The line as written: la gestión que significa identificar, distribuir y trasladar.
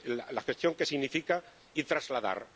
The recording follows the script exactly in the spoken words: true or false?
false